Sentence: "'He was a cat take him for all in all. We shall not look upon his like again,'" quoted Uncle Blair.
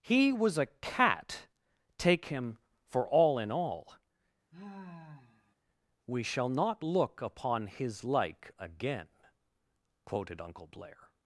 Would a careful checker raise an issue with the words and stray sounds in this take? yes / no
yes